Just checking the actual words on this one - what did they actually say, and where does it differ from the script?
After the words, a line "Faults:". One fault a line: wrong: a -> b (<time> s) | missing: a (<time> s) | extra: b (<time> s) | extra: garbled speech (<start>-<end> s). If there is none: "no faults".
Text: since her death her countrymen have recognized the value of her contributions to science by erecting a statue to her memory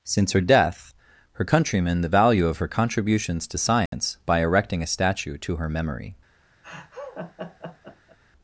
since her death her countrymen the value of her contributions to science by erecting a statue to her memory
Faults:
missing: have recognized (2.0 s)